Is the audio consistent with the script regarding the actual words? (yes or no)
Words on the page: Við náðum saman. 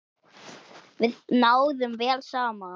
no